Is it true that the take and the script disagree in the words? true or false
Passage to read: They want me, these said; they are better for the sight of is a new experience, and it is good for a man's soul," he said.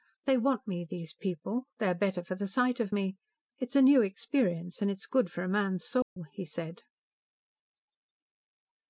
true